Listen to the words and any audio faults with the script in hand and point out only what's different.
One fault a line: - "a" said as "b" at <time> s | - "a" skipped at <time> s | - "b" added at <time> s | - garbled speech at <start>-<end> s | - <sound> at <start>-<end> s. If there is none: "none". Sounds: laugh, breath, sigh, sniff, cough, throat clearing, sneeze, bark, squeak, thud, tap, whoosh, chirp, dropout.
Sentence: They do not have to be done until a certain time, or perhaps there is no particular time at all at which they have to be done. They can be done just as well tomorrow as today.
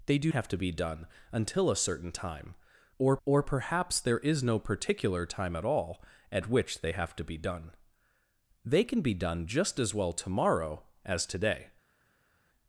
- "not" skipped at 0.3 s
- "or" added at 3.2 s